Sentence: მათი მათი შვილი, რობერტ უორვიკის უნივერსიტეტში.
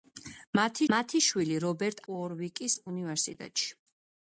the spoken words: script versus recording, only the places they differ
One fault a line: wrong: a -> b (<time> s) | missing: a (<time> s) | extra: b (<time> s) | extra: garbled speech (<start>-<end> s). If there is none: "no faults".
no faults